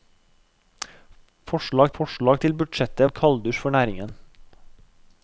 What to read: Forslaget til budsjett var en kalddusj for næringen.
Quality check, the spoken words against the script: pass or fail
fail